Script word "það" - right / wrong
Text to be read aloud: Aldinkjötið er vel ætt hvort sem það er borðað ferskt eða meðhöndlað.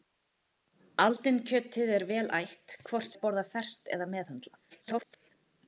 wrong